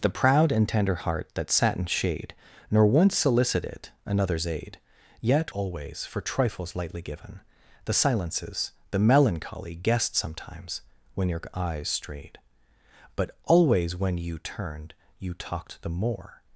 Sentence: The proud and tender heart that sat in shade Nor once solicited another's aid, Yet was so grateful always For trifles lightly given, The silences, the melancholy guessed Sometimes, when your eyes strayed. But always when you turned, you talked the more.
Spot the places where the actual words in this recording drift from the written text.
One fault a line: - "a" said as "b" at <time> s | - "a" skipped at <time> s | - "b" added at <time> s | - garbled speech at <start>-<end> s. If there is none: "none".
- "was so grateful" skipped at 5.5 s